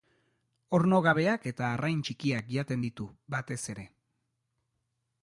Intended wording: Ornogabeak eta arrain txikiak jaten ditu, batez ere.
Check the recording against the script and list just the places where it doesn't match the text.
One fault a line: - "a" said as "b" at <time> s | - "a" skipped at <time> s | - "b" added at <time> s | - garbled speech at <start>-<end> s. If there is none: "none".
none